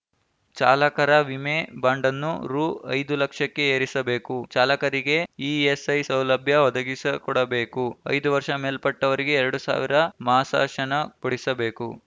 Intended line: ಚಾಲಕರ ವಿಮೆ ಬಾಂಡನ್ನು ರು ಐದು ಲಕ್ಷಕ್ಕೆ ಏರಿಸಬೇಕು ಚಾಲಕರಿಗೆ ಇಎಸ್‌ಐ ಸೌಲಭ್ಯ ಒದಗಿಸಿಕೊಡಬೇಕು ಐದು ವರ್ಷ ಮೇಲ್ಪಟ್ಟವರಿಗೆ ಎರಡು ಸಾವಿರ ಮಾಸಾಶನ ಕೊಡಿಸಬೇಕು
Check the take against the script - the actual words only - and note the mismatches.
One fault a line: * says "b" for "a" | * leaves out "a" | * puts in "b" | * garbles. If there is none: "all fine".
all fine